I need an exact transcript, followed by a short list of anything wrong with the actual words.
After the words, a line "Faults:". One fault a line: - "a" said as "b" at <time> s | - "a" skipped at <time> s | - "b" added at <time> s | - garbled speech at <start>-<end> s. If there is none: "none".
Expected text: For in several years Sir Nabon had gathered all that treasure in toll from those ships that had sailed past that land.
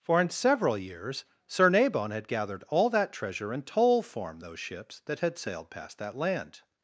For in several years Sir Nabon had gathered all that treasure in toll form those ships that had sailed past that land.
Faults:
- "from" said as "form" at 4.0 s